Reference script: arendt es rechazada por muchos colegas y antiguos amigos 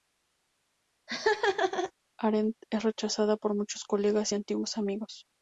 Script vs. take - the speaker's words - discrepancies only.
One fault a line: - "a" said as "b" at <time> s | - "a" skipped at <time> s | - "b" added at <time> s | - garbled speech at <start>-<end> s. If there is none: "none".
none